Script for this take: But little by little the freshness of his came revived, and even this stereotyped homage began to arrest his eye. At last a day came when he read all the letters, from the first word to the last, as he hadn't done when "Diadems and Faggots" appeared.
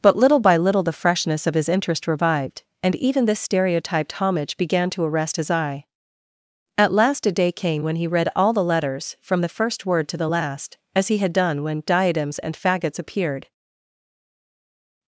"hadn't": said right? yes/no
no